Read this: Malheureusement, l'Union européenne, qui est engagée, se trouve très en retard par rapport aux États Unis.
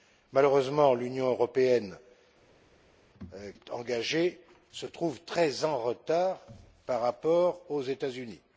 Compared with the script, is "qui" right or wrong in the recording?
wrong